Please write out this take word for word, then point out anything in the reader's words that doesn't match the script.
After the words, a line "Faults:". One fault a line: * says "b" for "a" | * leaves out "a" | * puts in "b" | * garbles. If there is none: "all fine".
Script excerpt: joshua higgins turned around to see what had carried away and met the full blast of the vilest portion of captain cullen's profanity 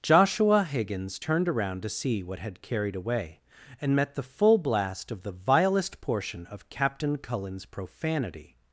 joshua higgins turned around to see what had carried away and met the full blast of the vilest portion of captain cullen's profanity
Faults:
all fine